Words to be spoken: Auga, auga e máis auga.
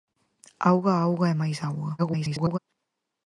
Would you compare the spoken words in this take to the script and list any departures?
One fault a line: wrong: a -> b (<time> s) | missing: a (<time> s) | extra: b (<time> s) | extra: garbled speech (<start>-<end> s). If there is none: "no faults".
extra: garbled speech (2.0-2.6 s)